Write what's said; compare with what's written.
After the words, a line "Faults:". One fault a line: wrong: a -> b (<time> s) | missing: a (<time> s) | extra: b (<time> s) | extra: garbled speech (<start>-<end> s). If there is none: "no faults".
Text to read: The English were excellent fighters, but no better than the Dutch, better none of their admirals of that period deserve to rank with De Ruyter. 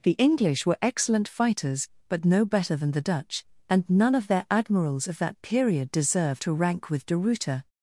The English were excellent fighters, but no better than the Dutch, and none of their admirals of that period deserve to rank with De Ruyter.
Faults:
wrong: better -> and (3.7 s)